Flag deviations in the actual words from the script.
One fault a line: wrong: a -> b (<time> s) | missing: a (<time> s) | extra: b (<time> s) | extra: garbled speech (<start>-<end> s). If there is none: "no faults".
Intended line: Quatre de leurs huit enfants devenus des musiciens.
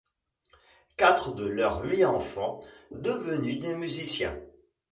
no faults